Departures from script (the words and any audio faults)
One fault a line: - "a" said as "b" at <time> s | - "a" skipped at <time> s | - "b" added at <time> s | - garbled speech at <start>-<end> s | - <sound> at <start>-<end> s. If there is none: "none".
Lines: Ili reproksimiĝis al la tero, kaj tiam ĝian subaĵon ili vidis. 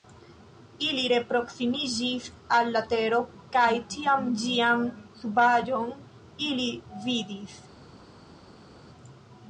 none